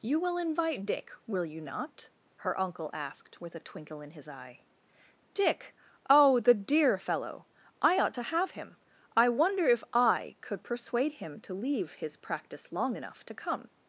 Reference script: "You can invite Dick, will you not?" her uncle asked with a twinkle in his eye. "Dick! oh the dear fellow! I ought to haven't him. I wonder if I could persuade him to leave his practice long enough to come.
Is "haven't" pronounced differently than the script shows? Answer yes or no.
yes